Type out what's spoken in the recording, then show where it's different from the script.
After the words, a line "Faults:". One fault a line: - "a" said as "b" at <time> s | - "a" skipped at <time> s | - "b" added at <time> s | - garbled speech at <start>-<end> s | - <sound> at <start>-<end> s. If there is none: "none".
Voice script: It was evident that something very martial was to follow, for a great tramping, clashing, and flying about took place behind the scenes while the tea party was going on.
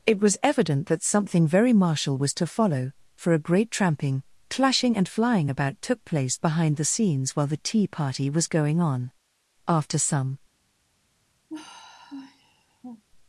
It was evident that something very martial was to follow, for a great tramping, clashing, and flying about took place behind the scenes while the tea party was going on. After some
Faults:
- "After some" added at 9.7 s
- sigh at 11.5-13.0 s